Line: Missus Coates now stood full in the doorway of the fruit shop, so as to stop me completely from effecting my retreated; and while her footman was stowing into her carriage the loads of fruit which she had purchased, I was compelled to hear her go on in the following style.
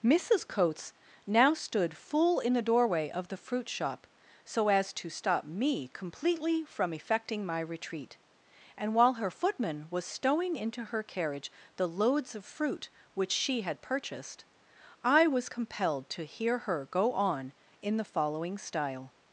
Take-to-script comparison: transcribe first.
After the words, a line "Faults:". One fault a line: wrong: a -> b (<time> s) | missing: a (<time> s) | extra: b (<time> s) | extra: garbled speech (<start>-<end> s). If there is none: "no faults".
Missus Coates now stood full in the doorway of the fruit shop, so as to stop me completely from effecting my retreat; and while her footman was stowing into her carriage the loads of fruit which she had purchased, I was compelled to hear her go on in the following style.
Faults:
wrong: retreated -> retreat (7.6 s)